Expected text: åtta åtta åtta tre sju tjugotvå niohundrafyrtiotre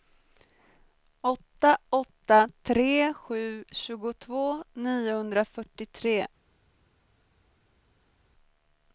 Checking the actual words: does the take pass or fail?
fail